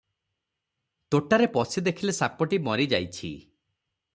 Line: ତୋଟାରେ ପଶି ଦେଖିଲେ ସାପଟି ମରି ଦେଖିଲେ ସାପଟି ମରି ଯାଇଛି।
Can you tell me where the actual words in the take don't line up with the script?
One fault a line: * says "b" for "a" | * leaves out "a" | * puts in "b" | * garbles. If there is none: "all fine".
* leaves out "ଦେଖିଲେ ସାପଟି ମରି"